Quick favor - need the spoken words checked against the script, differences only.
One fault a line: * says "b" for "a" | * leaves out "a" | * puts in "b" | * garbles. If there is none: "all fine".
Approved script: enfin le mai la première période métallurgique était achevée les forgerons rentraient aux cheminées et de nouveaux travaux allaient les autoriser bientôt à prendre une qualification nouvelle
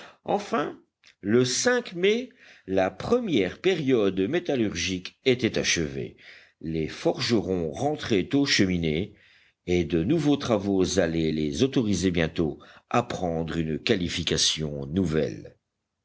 all fine